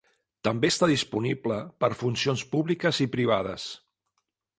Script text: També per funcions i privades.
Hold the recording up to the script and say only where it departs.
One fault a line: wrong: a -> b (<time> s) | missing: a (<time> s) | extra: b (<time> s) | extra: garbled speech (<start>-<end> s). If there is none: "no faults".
extra: està disponible (0.7 s)
extra: públiques (2.5 s)